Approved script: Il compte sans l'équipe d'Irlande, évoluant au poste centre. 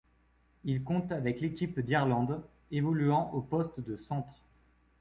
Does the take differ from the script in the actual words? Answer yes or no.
yes